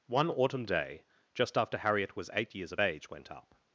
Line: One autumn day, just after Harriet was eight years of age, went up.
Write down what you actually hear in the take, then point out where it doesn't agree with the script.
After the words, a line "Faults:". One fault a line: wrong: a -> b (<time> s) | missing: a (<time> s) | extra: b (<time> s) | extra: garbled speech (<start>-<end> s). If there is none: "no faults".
One autumn day, just after Harriet was eight years of age, went up.
Faults:
no faults